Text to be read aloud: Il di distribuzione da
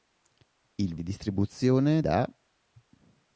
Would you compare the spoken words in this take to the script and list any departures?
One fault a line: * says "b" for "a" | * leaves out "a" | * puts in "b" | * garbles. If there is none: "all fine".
all fine